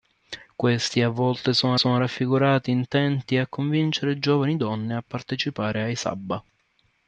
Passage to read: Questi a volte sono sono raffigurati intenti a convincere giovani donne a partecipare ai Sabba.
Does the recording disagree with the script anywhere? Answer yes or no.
no